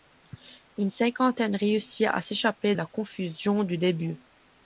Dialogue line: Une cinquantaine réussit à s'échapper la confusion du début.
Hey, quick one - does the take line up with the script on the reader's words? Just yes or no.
yes